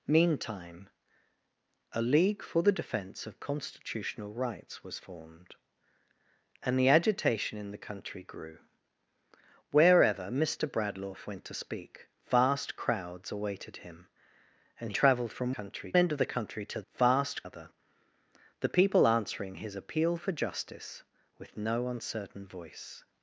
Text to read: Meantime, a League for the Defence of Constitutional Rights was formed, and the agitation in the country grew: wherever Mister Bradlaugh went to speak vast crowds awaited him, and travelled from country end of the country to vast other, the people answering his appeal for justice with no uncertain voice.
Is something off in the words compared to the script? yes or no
no